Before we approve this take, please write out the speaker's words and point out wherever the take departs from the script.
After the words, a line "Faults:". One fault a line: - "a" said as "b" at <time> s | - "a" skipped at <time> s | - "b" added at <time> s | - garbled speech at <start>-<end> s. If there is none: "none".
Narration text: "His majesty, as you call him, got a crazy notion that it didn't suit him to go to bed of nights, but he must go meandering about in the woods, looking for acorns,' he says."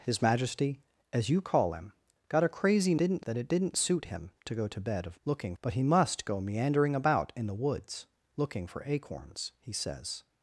"His majesty, as you call him, got a crazy didn't that it didn't suit him to go to bed of looking, but he must go meandering about in the woods, looking for acorns,' he says."
Faults:
- "notion" said as "didn't" at 3.0 s
- "nights" said as "looking" at 5.2 s